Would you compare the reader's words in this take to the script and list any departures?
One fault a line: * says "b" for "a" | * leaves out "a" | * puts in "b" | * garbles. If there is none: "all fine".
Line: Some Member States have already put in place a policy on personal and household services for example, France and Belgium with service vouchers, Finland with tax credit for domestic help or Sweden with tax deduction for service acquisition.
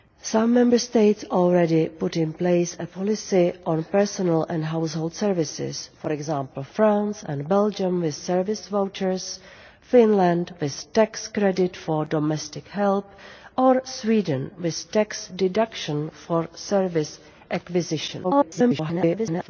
* garbles